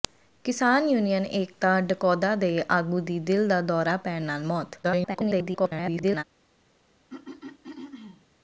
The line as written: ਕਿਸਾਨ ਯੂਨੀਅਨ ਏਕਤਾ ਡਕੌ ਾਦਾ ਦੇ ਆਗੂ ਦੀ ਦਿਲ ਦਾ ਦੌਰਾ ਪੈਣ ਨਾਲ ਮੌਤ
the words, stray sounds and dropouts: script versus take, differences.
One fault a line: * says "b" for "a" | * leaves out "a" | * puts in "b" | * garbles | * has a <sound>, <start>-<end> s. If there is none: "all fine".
* garbles
* has a throat clearing, 7.1-8.3 s